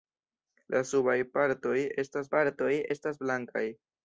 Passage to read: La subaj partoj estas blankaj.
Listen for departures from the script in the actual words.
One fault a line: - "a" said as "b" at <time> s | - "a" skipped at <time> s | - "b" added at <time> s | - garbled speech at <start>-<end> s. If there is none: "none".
- "partoj estas" added at 2.3 s